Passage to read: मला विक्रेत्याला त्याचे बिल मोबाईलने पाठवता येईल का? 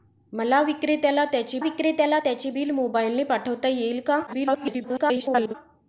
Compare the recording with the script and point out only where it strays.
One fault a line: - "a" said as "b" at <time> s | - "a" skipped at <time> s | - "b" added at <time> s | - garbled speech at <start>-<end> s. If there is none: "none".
- "विक्रेत्याला त्याचे" added at 1.6 s
- garbled speech at 4.3-5.5 s